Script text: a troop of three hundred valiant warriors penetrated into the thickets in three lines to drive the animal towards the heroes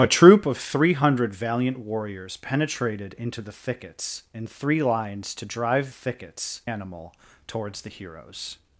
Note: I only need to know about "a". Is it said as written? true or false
true